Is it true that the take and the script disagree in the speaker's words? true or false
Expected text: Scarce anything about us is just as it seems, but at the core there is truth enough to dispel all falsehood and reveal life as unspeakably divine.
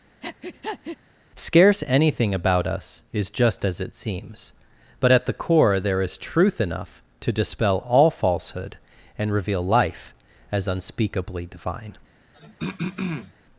false